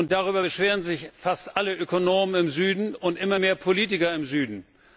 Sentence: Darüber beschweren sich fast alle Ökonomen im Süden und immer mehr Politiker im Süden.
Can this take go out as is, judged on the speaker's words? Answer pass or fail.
pass